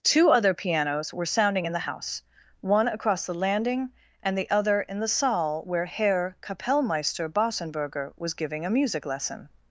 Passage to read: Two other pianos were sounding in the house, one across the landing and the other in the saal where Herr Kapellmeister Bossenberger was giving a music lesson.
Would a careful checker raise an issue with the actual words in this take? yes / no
no